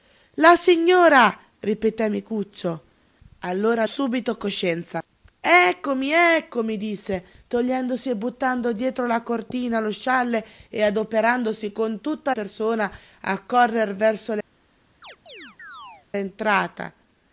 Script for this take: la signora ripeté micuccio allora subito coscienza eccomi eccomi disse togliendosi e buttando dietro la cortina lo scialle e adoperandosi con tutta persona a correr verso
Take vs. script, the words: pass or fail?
pass